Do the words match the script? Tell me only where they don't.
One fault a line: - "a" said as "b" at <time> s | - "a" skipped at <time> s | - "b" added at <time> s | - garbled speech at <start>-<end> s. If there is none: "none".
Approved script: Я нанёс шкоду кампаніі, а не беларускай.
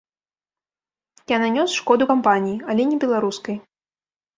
- "а" said as "але" at 2.7 s